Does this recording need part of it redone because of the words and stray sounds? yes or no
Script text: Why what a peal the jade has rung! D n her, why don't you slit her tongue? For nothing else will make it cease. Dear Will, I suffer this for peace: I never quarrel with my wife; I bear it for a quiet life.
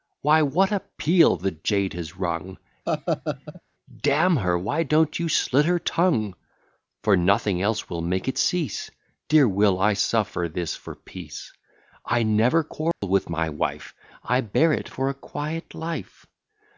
yes